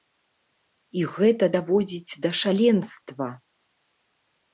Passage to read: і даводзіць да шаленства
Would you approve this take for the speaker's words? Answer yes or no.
no